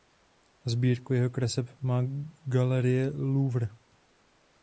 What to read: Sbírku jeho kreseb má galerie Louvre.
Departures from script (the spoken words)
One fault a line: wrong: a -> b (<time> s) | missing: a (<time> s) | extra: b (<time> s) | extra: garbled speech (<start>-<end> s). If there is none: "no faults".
no faults